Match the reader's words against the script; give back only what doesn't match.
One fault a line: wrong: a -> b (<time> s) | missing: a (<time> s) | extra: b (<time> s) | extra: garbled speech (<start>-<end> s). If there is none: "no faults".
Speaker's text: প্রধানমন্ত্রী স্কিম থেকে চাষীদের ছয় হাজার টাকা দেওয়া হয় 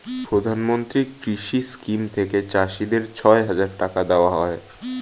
extra: কৃষি (1.2 s)